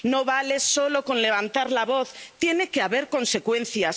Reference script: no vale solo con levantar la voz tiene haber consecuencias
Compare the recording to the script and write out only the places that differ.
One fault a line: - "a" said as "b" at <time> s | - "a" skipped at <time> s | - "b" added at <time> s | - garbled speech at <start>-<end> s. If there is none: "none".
- "que" added at 2.7 s